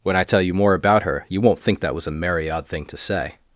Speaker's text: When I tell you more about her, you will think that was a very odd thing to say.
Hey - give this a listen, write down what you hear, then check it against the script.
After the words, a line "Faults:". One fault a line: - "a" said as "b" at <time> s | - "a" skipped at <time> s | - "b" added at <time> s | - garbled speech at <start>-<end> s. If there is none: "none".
When I tell you more about her, you won't think that was a merry odd thing to say.
Faults:
- "will" said as "won't" at 1.4 s
- "very" said as "merry" at 2.1 s